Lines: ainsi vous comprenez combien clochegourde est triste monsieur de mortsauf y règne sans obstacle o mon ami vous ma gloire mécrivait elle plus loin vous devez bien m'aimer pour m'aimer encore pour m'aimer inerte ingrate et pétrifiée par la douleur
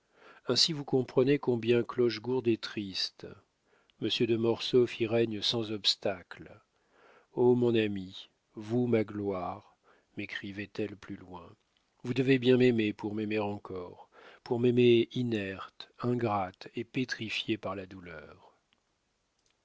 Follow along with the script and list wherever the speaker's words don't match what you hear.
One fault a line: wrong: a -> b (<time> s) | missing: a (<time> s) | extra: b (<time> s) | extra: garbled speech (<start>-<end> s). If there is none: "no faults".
no faults